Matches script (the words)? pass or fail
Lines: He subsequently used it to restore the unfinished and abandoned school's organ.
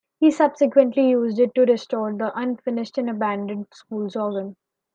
pass